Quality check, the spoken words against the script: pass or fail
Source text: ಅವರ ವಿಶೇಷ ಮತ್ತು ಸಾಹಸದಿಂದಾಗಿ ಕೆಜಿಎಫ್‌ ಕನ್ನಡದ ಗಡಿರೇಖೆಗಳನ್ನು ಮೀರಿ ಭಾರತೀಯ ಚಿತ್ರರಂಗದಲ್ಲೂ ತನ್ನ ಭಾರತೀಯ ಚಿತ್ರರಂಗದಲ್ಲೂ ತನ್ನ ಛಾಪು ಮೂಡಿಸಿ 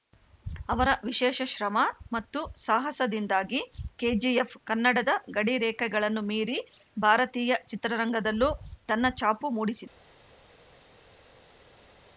fail